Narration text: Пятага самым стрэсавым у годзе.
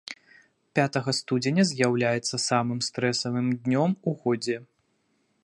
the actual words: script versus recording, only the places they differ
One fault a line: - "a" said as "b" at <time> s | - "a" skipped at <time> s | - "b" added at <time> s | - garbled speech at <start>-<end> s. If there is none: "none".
- "студзеня з'яўляецца" added at 1.2 s
- "днём" added at 3.7 s